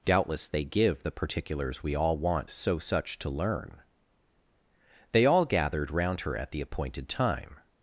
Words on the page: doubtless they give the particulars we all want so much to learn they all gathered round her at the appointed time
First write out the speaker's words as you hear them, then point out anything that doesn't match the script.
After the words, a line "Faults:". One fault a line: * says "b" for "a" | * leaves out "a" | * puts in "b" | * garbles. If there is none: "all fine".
doubtless they give the particulars we all want so such to learn they all gathered round her at the appointed time
Faults:
* says "such" for "much"